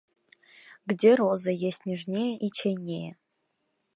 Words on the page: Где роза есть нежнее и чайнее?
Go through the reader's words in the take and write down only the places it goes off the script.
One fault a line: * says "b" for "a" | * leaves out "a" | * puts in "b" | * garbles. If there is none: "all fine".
all fine